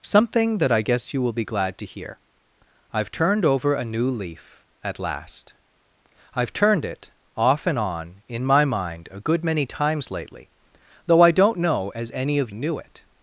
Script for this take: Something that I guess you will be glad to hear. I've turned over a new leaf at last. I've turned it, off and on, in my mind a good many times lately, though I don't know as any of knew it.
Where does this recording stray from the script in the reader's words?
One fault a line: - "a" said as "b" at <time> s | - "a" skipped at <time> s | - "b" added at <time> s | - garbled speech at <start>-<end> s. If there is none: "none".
none